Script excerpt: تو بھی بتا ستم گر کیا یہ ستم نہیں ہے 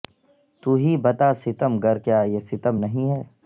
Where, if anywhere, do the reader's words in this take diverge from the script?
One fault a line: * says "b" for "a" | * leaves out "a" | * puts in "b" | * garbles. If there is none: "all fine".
* says "ہی" for "بھی"